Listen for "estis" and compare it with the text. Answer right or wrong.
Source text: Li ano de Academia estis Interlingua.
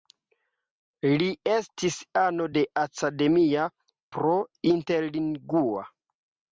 wrong